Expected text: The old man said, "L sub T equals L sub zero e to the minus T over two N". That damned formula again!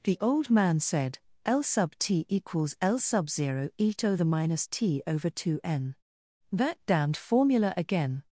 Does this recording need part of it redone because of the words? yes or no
no